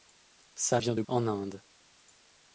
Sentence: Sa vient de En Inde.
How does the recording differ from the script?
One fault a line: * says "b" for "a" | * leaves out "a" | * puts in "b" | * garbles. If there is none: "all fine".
all fine